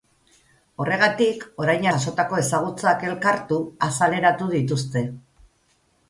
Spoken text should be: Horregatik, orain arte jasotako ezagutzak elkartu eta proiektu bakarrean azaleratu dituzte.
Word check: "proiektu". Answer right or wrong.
wrong